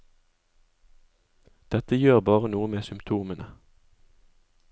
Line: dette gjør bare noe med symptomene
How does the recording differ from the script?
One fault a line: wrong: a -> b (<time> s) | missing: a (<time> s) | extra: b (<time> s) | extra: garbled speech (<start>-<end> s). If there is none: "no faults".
no faults